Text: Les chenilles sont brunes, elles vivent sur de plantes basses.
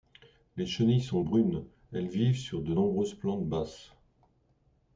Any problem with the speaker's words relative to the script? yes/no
yes